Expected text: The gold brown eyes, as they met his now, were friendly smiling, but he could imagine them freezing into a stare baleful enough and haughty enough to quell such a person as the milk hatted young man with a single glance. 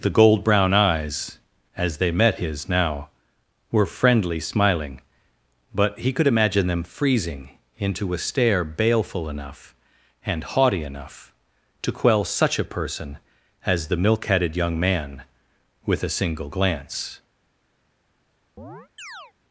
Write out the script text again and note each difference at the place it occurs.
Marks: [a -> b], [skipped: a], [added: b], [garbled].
The gold brown eyes, as they met his now, were friendly smiling, but he could imagine them freezing into a stare baleful enough and haughty enough to quell such a person as the milk hatted young man with a single glance.